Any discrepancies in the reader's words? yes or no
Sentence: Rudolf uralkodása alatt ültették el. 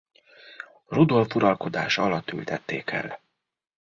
no